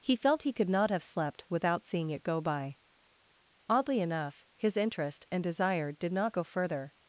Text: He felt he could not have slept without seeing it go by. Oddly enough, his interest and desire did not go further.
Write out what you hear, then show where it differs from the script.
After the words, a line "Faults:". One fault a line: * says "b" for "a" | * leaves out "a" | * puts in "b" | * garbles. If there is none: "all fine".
He felt he could not have slept without seeing it go by. Oddly enough, his interest and desire did not go further.
Faults:
all fine